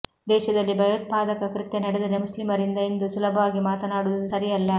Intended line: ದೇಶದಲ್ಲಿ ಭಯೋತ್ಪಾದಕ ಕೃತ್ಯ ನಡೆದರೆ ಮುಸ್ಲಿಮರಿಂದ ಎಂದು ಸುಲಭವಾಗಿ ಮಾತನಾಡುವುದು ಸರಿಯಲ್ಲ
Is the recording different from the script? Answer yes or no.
no